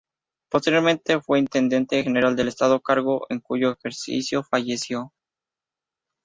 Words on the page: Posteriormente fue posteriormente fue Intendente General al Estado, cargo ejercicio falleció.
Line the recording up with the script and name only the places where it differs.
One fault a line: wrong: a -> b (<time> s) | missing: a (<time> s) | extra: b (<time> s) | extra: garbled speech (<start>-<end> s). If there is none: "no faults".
missing: posteriormente fue (1.4 s)
wrong: al -> del (2.4 s)
extra: en cuyo (3.3 s)